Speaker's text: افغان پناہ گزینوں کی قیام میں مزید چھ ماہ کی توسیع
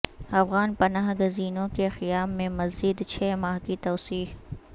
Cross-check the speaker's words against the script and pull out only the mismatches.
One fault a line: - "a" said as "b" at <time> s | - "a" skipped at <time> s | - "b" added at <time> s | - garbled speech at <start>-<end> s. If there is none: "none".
- "کی" said as "کے" at 1.8 s